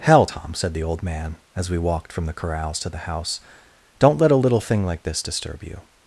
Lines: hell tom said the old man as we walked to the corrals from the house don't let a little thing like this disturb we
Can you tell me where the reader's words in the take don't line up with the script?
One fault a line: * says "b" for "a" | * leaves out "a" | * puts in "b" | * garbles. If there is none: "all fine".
* says "from" for "to"
* says "to" for "from"
* says "you" for "we"